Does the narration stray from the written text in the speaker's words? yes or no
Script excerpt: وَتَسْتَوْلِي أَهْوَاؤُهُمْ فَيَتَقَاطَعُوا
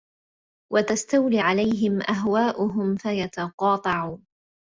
yes